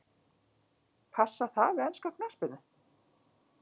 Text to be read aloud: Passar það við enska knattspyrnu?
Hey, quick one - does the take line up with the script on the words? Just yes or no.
yes